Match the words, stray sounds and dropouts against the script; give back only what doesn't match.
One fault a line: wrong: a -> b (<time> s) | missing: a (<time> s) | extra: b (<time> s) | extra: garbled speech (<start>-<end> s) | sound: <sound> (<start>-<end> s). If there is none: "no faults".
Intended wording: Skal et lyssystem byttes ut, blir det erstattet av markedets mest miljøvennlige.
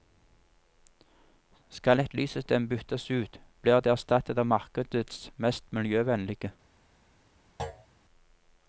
sound: thud (7.6-7.9 s)